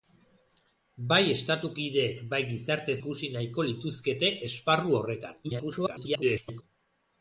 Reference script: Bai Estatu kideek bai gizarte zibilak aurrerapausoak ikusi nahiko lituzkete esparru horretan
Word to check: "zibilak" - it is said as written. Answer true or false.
false